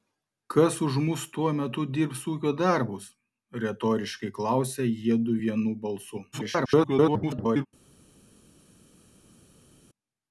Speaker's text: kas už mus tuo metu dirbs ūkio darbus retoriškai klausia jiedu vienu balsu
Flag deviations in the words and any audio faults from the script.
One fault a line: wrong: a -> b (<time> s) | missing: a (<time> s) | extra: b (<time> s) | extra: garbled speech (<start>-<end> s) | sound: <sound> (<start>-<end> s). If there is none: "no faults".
extra: garbled speech (6.3-7.7 s)